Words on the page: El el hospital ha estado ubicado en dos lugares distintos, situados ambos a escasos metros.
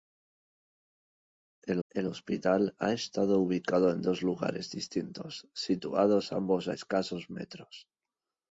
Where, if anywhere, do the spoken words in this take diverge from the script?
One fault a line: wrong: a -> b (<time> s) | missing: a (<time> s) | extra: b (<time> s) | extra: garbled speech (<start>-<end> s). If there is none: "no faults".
no faults